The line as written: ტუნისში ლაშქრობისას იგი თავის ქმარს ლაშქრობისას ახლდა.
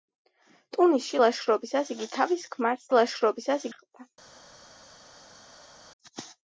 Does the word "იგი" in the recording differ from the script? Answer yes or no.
no